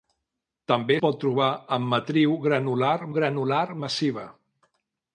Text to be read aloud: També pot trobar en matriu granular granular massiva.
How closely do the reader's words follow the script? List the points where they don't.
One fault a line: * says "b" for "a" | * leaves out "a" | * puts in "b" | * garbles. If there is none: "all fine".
all fine